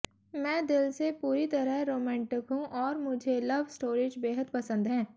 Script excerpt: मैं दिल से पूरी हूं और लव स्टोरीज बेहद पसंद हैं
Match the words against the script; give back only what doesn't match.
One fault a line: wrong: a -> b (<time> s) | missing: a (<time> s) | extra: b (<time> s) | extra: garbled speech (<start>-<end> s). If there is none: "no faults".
extra: तरह रोमांटिक (1.5 s)
extra: मुझे (3.0 s)